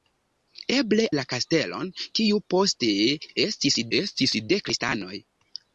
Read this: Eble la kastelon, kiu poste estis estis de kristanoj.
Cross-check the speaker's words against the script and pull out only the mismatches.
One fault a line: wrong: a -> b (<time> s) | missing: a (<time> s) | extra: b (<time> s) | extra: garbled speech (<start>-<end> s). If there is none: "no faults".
no faults